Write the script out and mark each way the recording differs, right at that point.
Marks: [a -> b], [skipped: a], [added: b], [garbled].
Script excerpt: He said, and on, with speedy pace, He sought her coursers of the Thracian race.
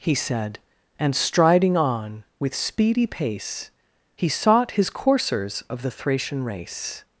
He said, and [added: striding] on, with speedy pace, He sought [her -> his] coursers of the Thracian race.